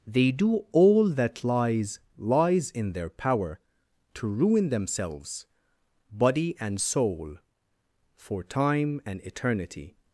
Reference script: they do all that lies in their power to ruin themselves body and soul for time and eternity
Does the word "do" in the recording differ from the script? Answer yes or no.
no